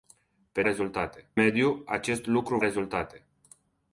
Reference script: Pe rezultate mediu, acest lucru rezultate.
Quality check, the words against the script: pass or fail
pass